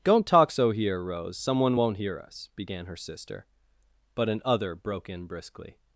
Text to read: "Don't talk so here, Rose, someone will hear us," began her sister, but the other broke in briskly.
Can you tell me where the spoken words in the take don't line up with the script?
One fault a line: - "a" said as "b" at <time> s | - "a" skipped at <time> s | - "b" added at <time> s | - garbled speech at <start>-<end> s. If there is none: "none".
- "will" said as "won't" at 1.7 s
- "the" said as "an" at 4.3 s